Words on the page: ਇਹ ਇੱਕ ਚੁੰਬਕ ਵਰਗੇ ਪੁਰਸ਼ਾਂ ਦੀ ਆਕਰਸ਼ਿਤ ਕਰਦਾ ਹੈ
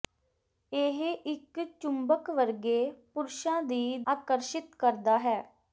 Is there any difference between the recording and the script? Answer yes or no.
no